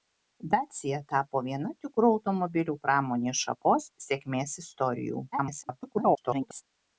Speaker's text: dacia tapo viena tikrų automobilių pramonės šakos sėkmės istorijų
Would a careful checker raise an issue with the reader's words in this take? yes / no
yes